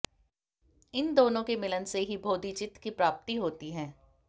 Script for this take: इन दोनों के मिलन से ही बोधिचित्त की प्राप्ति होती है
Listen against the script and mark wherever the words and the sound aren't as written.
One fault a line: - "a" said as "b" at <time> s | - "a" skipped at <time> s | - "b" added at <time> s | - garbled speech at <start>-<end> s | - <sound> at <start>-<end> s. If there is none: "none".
none